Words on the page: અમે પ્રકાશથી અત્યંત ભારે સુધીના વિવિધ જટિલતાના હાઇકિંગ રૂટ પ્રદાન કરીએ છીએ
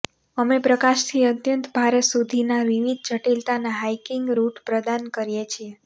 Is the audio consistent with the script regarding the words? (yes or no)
yes